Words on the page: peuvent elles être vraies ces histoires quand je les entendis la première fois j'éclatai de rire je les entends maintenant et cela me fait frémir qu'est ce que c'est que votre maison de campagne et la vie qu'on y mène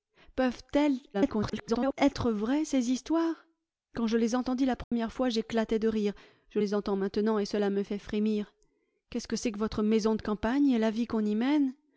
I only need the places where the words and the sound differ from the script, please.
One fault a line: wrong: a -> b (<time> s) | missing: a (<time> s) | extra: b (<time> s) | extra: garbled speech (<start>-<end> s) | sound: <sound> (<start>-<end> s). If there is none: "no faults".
extra: garbled speech (1.1-1.9 s)
sound: dropout (4.8-4.9 s)